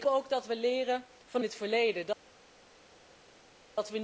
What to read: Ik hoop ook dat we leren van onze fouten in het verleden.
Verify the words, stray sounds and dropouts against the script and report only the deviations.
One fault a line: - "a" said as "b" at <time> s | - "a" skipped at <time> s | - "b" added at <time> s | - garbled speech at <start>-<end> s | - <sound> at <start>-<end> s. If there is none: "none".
- "hoop" skipped at 0.1 s
- "onze fouten" skipped at 1.4 s